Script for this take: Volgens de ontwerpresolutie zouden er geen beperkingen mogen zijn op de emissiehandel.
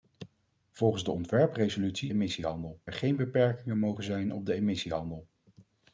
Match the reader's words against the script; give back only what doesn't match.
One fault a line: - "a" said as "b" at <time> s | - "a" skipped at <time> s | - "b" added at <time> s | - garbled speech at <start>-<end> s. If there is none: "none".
- "zouden" said as "emissiehandel" at 2.1 s